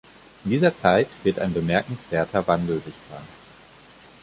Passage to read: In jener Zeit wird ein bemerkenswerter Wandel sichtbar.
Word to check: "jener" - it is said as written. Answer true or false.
false